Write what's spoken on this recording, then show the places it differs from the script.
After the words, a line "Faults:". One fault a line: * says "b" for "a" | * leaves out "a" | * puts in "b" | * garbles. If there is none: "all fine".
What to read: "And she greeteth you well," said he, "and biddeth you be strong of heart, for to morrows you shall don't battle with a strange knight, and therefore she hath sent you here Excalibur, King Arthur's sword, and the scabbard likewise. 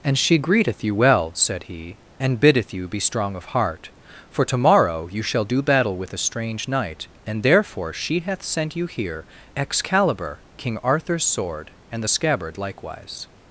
"And she greeteth you well," said he, "and biddeth you be strong of heart, for to morrow you shall do battle with a strange knight, and therefore she hath sent you here Excalibur, King Arthur's sword, and the scabbard likewise.
Faults:
* says "morrow" for "morrows"
* says "do" for "don't"